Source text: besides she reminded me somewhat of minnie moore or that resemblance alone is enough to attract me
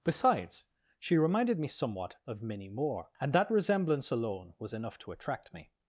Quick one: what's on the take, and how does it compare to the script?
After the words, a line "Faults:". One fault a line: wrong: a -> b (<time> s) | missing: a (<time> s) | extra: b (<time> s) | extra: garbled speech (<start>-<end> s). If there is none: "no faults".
besides she reminded me somewhat of minnie moore and that resemblance alone was enough to attract me
Faults:
wrong: or -> and (3.2 s)
wrong: is -> was (4.6 s)